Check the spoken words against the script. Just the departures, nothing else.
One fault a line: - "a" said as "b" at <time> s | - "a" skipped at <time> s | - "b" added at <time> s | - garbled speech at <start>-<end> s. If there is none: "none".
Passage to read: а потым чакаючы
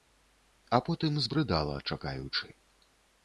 - "збрыдала" added at 1.2 s